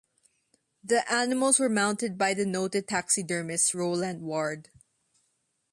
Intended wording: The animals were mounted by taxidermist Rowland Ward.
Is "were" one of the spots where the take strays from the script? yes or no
no